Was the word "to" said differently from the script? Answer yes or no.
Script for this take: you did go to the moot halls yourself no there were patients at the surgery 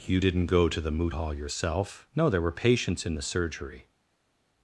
no